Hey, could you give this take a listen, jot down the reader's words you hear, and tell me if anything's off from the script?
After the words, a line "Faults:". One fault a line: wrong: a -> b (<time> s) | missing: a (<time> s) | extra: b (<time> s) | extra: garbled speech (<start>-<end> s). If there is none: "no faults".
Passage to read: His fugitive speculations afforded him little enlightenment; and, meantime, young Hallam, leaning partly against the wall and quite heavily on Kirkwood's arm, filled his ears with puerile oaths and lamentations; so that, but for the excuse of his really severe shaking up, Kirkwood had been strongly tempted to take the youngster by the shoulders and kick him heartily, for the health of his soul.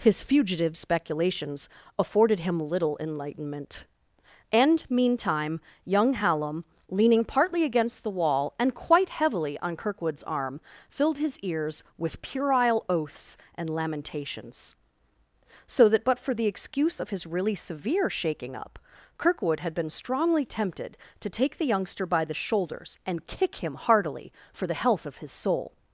His fugitive speculations afforded him little enlightenment; and, meantime, young Hallam, leaning partly against the wall and quite heavily on Kirkwood's arm, filled his ears with puerile oaths and lamentations; so that, but for the excuse of his really severe shaking up, Kirkwood had been strongly tempted to take the youngster by the shoulders and kick him heartily, for the health of his soul.
Faults:
no faults